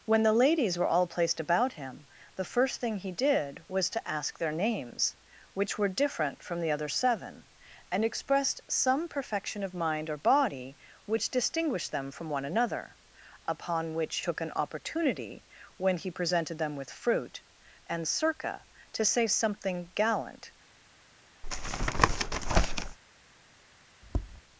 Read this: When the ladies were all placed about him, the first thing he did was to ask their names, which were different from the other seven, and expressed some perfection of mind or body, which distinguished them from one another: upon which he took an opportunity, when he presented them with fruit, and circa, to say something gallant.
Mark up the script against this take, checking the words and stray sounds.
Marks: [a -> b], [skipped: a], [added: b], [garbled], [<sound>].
When the ladies were all placed about him, the first thing he did was to ask their names, which were different from the other seven, and expressed some perfection of mind or body, which distinguished them from one another: upon which [skipped: he] took an opportunity, when he presented them with fruit, and circa, to say something gallant. [tap] [tap]